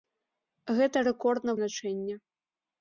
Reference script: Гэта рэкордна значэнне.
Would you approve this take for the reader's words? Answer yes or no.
yes